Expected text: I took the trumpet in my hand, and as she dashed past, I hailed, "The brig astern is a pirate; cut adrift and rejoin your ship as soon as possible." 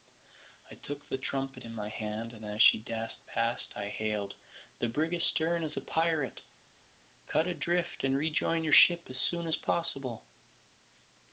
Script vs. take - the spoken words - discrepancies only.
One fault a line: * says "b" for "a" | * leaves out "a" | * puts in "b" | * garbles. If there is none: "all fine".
all fine